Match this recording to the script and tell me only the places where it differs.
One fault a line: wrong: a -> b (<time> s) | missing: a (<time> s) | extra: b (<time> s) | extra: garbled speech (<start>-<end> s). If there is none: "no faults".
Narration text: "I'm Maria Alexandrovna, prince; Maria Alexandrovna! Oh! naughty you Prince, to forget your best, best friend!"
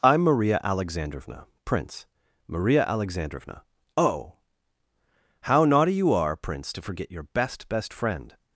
extra: how (5.4 s)
extra: are (6.1 s)